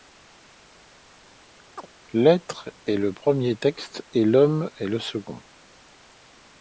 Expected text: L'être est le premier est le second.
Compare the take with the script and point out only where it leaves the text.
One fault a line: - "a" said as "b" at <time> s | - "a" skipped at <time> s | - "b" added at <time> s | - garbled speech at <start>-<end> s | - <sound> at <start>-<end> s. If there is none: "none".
- chirp at 1.8-1.9 s
- "texte et l'homme" added at 3.5 s